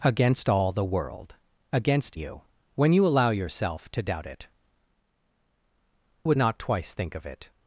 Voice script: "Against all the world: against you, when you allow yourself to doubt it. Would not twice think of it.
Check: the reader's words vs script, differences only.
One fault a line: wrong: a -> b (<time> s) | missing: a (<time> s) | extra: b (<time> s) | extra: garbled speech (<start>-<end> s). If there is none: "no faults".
no faults